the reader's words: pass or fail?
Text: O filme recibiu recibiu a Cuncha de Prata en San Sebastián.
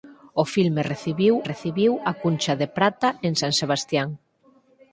pass